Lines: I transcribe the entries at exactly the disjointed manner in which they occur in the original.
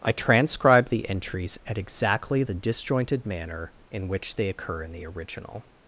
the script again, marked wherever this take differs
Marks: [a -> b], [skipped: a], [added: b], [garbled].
I transcribe the entries at exactly the disjointed manner in which they occur in the original.